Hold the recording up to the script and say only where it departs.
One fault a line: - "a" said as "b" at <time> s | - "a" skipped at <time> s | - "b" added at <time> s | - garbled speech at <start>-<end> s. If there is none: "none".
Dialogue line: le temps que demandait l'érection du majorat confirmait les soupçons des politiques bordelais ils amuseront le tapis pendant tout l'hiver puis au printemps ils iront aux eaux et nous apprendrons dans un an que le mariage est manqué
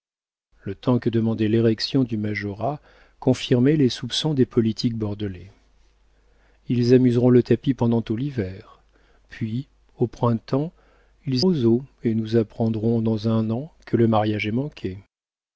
- "iront" skipped at 11.4 s